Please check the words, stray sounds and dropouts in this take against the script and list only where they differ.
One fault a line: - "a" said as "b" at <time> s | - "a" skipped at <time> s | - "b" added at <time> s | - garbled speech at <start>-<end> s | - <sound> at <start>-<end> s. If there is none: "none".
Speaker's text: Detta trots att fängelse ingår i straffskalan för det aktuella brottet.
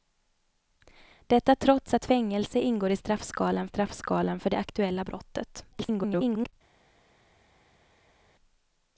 - "straffskalan" added at 3.6 s
- garbled speech at 5.7-6.5 s